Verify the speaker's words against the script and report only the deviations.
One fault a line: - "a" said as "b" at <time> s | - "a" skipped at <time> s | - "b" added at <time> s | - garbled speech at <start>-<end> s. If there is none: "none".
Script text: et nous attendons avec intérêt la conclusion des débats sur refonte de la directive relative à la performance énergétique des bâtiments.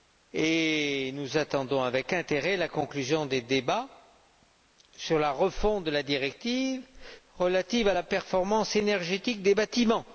- "la" added at 5.2 s